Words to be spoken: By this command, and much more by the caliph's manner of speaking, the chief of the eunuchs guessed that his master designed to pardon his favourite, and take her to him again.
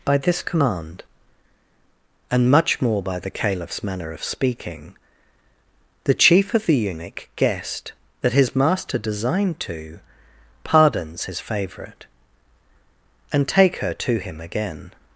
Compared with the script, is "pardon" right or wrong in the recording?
wrong